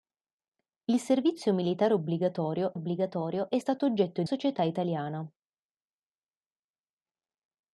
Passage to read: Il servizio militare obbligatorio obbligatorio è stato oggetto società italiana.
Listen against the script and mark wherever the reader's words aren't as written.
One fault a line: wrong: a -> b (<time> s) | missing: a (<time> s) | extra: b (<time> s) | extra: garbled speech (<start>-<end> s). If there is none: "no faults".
no faults